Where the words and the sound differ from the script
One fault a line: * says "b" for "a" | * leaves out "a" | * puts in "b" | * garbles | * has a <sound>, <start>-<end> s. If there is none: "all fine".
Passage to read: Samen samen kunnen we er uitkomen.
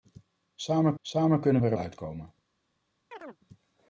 * has a chirp, 3.1-3.4 s